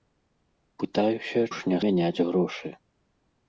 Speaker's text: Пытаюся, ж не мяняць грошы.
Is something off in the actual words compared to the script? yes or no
no